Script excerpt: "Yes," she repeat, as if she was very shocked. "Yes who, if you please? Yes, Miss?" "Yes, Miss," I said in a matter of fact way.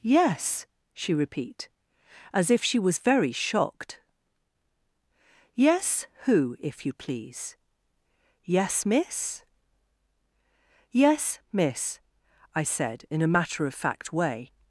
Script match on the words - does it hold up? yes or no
yes